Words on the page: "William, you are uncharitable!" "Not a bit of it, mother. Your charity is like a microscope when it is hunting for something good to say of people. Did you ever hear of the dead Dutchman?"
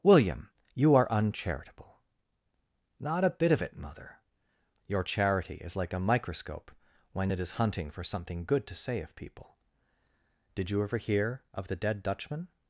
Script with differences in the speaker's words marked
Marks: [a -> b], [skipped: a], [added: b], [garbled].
"William, you are uncharitable!" "Not a bit of it, mother. Your charity is like a microscope when it is hunting for something good to say of people. Did you ever hear of the dead Dutchman?"